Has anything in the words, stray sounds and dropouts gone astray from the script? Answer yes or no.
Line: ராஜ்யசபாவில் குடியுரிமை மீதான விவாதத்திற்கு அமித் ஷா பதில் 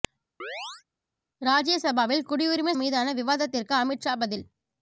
yes